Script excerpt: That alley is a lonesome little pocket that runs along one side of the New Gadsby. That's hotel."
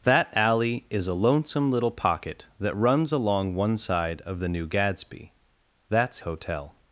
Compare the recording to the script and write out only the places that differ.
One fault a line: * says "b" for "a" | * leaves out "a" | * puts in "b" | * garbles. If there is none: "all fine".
all fine